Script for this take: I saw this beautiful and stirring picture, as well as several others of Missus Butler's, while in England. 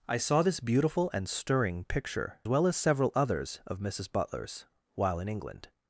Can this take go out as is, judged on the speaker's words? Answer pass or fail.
fail